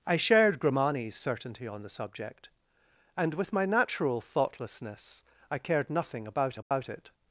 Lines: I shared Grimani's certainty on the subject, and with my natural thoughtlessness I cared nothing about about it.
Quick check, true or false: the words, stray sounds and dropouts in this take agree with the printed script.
false